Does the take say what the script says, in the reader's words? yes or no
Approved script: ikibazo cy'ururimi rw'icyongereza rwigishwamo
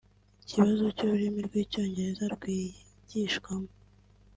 yes